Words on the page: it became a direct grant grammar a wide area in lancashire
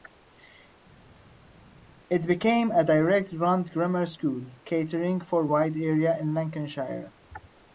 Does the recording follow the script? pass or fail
fail